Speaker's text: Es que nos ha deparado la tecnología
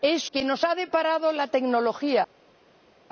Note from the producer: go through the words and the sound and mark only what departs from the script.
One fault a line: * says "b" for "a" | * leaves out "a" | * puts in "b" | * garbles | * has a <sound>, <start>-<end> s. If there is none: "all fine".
all fine